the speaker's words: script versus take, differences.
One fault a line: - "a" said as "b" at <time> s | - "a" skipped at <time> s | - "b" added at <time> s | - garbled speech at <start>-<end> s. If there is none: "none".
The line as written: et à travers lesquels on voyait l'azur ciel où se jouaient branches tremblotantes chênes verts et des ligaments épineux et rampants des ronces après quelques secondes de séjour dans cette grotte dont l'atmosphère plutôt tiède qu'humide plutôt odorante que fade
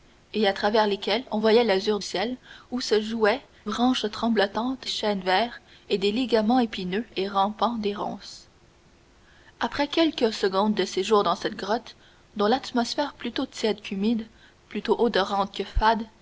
none